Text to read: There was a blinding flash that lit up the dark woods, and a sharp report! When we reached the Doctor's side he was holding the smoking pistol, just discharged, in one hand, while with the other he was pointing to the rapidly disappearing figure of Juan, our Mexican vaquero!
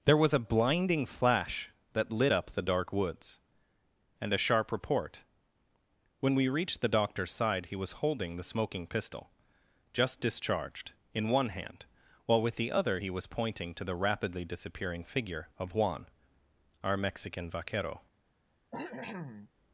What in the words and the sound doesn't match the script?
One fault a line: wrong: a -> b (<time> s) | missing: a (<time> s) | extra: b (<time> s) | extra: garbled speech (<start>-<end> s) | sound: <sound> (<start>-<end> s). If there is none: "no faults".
sound: cough (18.7-19.5 s)